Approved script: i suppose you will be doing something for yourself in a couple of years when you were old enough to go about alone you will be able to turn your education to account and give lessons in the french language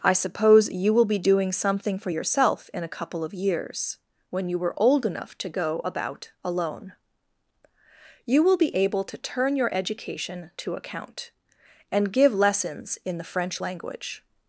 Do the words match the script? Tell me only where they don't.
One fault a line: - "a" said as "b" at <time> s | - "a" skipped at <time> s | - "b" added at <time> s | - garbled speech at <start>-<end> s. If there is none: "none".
none